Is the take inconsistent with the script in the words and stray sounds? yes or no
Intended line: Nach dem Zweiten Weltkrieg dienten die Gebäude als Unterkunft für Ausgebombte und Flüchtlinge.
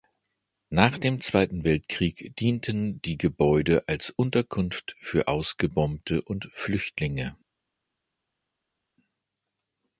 no